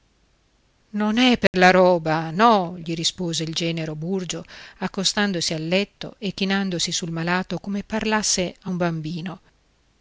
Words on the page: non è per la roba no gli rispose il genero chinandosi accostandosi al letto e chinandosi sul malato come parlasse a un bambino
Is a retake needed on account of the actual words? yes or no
yes